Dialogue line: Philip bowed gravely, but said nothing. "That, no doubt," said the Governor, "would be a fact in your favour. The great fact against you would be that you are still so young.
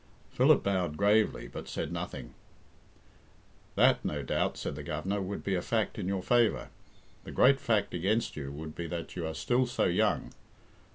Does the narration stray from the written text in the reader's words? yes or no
no